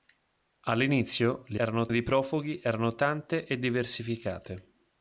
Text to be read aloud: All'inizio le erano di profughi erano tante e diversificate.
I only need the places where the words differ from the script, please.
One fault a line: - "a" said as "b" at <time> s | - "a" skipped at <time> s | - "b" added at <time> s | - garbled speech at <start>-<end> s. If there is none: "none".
none